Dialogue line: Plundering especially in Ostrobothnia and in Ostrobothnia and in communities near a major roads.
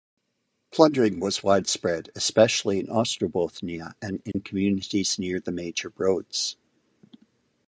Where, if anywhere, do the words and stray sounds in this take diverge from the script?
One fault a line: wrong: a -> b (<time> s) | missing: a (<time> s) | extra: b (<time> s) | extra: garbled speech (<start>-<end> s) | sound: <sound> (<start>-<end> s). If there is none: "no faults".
wrong: especially in Ostrobothnia and -> was widespread especially (1.2 s)
sound: dropout (4.3-4.3 s)
wrong: a -> the (5.4 s)